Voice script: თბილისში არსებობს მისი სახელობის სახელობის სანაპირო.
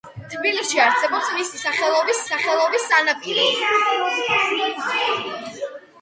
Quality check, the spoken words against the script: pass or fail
pass